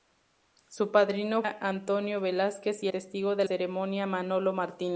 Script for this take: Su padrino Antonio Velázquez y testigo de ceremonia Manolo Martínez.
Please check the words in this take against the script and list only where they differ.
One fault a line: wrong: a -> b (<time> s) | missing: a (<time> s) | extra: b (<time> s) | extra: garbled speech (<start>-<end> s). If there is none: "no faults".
no faults